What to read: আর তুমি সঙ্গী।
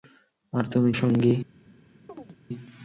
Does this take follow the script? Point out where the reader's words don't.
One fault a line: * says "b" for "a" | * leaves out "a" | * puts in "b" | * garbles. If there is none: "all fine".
all fine